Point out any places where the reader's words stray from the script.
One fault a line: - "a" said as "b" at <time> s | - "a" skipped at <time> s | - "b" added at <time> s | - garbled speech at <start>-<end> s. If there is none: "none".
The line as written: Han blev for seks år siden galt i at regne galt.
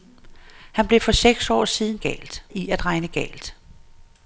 none